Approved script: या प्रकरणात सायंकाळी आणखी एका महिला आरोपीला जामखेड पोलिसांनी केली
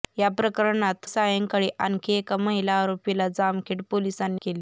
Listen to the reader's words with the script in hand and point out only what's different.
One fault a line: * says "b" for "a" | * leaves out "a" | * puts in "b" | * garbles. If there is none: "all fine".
all fine